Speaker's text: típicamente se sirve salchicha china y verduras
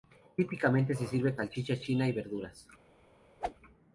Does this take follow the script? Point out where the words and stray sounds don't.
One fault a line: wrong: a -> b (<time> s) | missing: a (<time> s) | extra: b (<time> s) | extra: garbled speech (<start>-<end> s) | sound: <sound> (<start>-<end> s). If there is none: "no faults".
sound: whoosh (3.4-3.5 s)